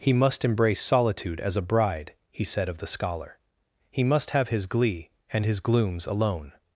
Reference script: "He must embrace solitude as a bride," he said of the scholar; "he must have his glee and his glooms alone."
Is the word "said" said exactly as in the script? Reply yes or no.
yes